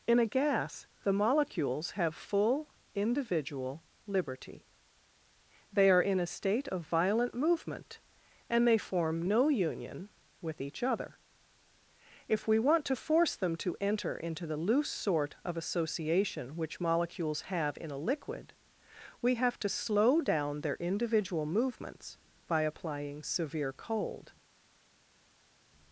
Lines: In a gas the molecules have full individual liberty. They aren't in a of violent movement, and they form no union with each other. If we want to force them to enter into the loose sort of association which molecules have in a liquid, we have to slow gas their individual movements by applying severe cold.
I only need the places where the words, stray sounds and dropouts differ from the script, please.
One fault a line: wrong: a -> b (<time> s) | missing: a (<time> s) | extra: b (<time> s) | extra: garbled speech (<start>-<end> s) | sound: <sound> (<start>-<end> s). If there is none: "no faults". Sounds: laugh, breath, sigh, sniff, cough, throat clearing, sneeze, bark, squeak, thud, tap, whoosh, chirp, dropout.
wrong: aren't -> are (5.9 s)
extra: state (6.3 s)
wrong: gas -> down (20.2 s)